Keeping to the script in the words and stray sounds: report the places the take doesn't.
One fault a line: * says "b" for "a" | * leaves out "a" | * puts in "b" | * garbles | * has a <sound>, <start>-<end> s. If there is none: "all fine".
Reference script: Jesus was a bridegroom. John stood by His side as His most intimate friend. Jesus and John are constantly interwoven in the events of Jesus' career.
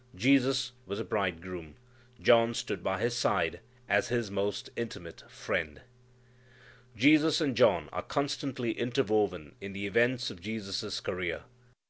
all fine